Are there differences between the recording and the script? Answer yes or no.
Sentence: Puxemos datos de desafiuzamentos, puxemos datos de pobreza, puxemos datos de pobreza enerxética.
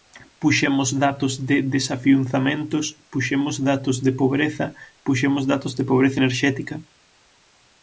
no